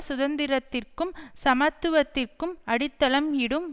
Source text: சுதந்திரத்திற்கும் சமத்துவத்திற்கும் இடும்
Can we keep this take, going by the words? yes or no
no